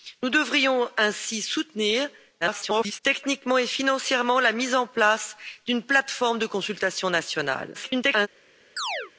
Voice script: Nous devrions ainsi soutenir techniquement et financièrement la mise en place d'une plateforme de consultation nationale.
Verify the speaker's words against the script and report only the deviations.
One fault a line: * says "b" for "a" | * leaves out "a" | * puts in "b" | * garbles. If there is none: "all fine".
* garbles
* garbles